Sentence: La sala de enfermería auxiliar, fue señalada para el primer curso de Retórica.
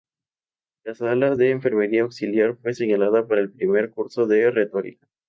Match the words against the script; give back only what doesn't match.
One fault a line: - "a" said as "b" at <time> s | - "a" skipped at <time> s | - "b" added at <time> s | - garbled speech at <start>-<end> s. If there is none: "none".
none